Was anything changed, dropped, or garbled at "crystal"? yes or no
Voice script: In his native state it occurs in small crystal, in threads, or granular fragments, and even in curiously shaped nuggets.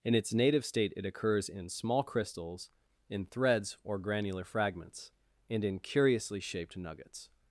yes